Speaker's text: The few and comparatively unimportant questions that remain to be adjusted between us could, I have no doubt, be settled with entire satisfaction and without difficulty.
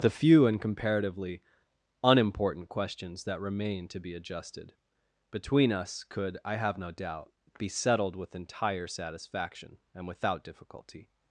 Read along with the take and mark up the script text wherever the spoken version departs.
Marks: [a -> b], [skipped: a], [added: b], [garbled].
The few and comparatively unimportant questions that remain to be adjusted between us could, I have no doubt, be settled with entire satisfaction and without difficulty.